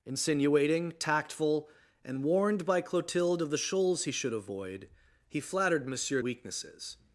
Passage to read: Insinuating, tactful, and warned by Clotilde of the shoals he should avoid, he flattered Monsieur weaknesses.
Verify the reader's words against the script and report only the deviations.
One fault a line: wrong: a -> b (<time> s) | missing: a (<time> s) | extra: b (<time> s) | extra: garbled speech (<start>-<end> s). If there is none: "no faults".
no faults